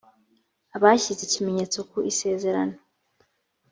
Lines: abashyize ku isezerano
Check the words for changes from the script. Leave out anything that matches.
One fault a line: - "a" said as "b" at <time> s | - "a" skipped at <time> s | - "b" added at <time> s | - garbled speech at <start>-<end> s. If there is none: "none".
- "ikimenyetso" added at 1.2 s